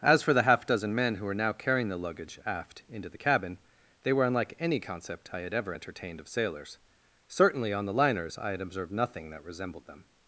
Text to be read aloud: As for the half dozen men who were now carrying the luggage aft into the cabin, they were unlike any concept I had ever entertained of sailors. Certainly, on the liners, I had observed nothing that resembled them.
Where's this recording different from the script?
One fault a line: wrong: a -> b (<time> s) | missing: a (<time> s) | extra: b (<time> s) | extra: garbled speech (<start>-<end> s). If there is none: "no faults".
no faults